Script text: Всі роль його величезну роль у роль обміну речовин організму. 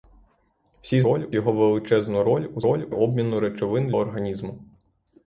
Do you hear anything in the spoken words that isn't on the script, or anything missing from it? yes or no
no